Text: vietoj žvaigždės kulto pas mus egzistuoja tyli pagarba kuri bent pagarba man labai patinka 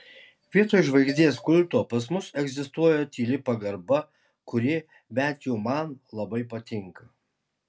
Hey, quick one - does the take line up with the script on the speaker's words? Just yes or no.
no